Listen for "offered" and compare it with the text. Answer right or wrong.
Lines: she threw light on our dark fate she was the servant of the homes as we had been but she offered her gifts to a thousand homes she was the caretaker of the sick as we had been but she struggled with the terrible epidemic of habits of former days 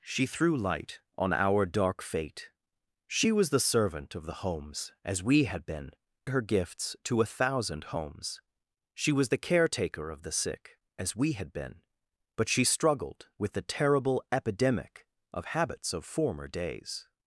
wrong